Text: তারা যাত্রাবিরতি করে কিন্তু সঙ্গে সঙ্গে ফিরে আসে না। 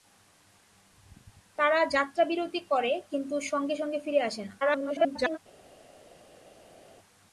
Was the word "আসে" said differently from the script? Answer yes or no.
no